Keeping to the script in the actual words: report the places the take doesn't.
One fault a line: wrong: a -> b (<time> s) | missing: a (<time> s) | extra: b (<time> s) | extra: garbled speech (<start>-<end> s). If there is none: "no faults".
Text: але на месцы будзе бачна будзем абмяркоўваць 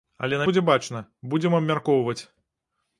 missing: месцы (0.5 s)